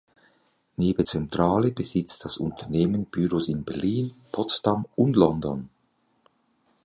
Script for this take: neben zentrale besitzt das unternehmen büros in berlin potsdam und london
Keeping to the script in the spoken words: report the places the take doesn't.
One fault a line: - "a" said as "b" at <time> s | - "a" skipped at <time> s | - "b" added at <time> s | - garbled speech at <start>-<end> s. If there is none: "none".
none